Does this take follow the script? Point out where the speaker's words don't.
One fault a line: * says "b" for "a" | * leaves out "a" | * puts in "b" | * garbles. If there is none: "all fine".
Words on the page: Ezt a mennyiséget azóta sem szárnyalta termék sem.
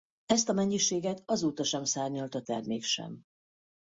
all fine